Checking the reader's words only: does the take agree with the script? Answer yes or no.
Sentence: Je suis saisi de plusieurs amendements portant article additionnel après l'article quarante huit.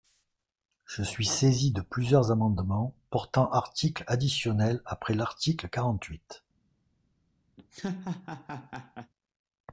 yes